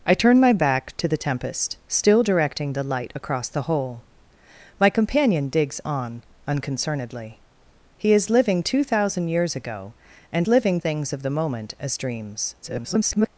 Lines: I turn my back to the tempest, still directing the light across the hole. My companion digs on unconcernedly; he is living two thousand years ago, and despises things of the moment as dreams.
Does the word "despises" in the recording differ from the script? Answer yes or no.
yes